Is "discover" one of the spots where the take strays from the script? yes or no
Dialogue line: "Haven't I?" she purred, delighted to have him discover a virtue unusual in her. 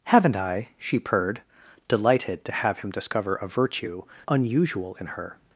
no